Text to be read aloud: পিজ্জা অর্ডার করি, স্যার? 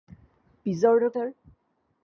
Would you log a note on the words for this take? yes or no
yes